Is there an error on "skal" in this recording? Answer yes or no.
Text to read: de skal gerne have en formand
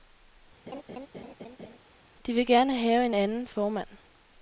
yes